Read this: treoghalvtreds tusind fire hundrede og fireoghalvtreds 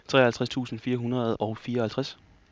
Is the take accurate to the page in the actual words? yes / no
yes